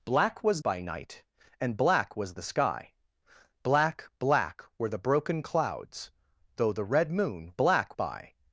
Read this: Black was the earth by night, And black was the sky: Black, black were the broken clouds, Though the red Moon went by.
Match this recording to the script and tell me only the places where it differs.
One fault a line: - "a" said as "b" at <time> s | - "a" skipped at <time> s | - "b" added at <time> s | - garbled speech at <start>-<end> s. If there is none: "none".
- "the earth" skipped at 0.6 s
- "went" said as "black" at 7.5 s